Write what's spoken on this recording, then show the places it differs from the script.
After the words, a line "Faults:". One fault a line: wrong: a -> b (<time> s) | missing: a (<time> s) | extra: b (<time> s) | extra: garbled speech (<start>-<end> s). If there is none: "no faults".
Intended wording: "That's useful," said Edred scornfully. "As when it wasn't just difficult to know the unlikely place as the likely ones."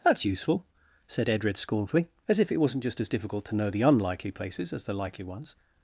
"That's useful," said Edred scornfully. "As if it wasn't just as difficult to know the unlikely places as the likely ones."
Faults:
wrong: when -> if (2.4 s)
extra: as (3.0 s)
wrong: place -> places (4.3 s)